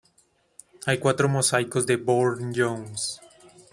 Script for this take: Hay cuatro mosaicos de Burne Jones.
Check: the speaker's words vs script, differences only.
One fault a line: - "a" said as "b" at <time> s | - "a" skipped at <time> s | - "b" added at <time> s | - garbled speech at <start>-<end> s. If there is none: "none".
none